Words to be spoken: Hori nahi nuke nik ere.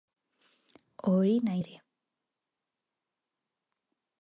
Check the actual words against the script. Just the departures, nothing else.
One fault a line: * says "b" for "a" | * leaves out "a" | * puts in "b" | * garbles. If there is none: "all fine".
* leaves out "nuke nik"